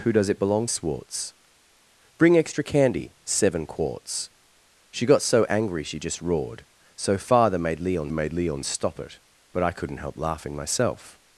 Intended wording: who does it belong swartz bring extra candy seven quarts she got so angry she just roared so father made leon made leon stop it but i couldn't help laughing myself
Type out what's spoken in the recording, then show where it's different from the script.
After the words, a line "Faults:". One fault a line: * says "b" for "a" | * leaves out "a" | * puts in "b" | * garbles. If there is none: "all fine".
who does it belong swartz bring extra candy seven quarts she got so angry she just roared so father made leon made leon stop it but i couldn't help laughing myself
Faults:
all fine